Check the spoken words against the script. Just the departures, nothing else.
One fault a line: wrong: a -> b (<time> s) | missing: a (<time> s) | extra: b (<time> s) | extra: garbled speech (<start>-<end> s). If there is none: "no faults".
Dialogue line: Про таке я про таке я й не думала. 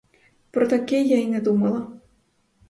missing: про таке я (1.2 s)